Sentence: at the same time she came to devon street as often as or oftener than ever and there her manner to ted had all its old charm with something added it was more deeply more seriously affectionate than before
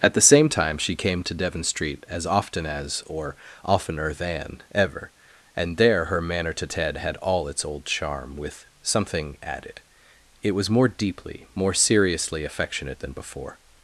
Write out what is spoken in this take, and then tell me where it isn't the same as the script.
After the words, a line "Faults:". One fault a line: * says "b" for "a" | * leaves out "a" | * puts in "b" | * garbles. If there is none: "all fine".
at the same time she came to devon street as often as or oftener than ever and there her manner to ted had all its old charm with something added it was more deeply more seriously affectionate than before
Faults:
all fine